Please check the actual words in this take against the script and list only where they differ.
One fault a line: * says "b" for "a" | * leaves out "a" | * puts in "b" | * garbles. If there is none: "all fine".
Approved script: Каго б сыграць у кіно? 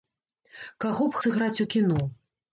all fine